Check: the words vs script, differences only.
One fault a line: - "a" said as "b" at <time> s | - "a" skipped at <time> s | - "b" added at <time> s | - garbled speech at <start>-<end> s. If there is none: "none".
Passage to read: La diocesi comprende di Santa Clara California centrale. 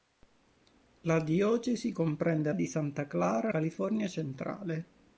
none